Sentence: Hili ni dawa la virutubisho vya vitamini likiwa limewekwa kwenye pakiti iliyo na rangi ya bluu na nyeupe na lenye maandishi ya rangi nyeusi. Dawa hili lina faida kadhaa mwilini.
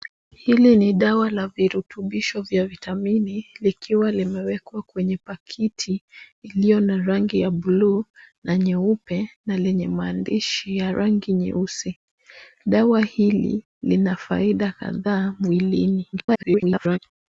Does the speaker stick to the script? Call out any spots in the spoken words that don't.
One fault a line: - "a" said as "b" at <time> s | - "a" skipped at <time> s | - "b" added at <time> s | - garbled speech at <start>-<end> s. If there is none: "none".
- garbled speech at 16.1-17.0 s